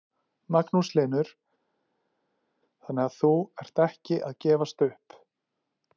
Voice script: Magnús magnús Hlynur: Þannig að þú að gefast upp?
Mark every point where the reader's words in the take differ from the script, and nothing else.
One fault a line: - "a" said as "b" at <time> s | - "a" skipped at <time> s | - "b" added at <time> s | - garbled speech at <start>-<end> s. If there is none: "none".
- "magnús" skipped at 0.9 s
- "ert ekki" added at 3.6 s